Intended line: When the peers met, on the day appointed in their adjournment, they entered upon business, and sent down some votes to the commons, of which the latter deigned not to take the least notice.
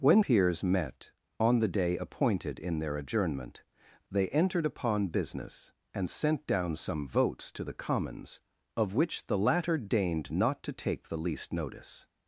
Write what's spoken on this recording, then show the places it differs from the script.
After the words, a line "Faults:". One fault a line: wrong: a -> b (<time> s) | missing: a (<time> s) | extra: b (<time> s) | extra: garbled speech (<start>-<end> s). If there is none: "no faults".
When peers met, on the day appointed in their adjournment, they entered upon business, and sent down some votes to the commons, of which the latter deigned not to take the least notice.
Faults:
missing: the (0.2 s)